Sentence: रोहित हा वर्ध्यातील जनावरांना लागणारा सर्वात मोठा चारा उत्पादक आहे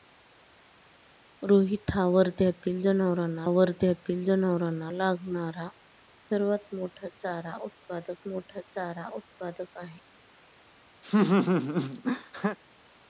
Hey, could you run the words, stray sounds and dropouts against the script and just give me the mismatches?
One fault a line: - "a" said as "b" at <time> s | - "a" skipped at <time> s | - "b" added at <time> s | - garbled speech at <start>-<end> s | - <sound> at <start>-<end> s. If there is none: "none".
- "वर्ध्यातील जनावरांना" added at 3.5 s
- "मोठा चारा उत्पादक" added at 8.3 s
- laugh at 11.0-12.6 s